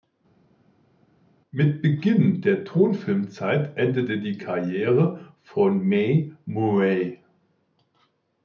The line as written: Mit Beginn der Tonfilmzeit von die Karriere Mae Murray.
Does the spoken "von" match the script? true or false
false